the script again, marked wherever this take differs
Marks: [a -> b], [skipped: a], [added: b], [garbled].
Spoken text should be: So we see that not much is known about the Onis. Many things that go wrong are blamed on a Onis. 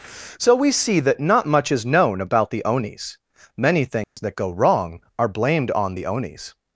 So we see that not much is known about the Onis. Many things that go wrong are blamed on [a -> the] Onis.